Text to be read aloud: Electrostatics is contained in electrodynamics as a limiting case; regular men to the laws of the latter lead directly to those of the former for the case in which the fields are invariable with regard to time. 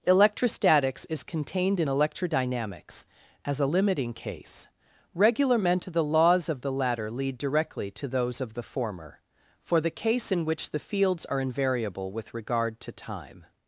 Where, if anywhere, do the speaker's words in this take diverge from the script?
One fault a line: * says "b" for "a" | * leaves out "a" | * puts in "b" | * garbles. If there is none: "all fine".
all fine